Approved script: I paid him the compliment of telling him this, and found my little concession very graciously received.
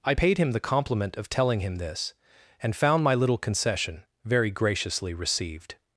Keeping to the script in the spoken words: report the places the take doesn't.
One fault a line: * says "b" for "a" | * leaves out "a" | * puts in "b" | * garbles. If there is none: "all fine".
all fine